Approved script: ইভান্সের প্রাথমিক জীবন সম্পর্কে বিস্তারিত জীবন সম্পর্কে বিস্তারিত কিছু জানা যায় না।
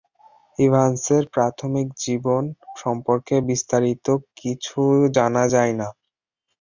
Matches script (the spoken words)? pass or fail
fail